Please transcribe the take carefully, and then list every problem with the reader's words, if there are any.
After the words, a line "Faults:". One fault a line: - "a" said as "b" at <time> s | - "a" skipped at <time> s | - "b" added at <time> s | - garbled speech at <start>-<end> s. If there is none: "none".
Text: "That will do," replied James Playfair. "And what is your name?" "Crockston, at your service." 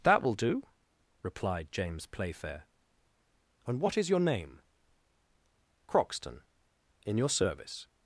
"That will do," replied James Playfair. "And what is your name?" "Crockston, in your service."
Faults:
- "at" said as "in" at 7.0 s